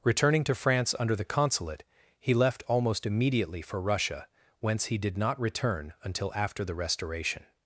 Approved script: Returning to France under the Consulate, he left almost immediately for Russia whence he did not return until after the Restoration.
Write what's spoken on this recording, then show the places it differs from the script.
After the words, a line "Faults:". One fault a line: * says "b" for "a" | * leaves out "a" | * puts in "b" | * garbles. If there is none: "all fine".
Returning to France under the Consulate, he left almost immediately for Russia whence he did not return until after the Restoration.
Faults:
all fine